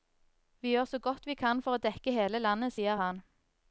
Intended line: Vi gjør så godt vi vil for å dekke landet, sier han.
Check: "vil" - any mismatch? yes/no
yes